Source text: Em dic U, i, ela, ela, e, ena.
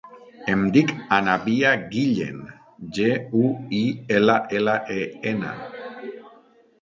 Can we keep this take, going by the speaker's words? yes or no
no